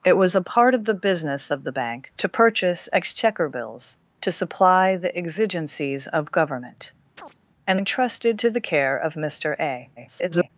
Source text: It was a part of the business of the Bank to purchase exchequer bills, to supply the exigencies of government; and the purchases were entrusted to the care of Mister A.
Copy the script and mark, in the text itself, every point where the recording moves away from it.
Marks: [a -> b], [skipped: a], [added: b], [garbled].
It was a part of the business of the Bank to purchase exchequer bills, to supply the exigencies of government; and [skipped: the purchases were] entrusted to the care of Mister A. [garbled]